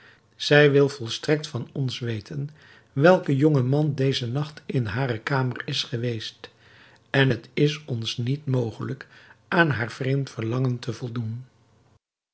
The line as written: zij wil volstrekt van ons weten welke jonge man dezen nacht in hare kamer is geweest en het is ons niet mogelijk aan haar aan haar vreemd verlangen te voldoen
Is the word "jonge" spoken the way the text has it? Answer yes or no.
yes